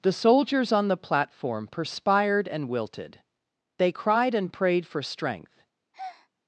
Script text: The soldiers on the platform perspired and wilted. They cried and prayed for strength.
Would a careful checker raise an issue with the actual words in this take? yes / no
no